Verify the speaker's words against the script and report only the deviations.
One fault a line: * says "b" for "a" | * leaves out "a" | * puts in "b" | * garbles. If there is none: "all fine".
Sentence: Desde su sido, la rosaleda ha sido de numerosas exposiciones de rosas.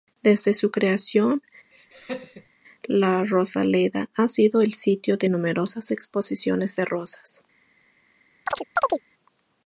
* says "creación" for "sido"
* puts in "el sitio"